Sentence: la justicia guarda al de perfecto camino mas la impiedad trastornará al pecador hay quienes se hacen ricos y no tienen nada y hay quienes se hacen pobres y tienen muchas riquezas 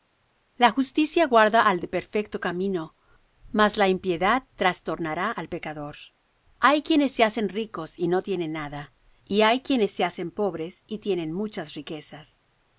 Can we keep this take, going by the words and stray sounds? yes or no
yes